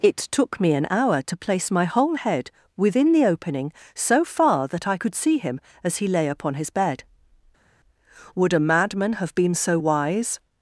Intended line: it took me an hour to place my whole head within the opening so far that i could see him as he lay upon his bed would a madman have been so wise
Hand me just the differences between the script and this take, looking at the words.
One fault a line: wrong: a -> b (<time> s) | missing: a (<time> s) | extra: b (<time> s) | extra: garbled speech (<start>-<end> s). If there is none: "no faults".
no faults